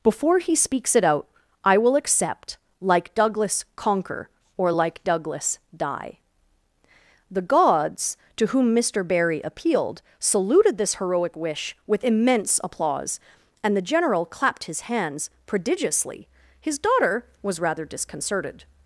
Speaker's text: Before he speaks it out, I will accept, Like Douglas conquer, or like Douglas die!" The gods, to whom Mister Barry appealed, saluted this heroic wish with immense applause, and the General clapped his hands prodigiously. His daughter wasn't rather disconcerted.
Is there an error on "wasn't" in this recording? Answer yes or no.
yes